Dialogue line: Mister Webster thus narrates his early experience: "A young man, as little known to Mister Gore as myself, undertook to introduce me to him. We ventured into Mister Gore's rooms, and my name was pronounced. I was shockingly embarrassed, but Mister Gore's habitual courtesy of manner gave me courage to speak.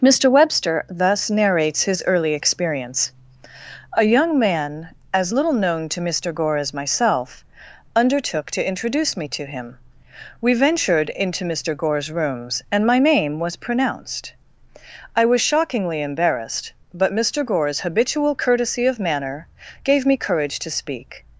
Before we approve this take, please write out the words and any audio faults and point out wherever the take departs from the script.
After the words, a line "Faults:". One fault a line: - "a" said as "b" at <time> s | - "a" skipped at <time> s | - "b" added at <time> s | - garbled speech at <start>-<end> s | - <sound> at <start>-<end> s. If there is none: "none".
Mister Webster thus narrates his early experience: "A young man, as little known to Mister Gore as myself, undertook to introduce me to him. We ventured into Mister Gore's rooms, and my name was pronounced. I was shockingly embarrassed, but Mister Gore's habitual courtesy of manner gave me courage to speak.
Faults:
none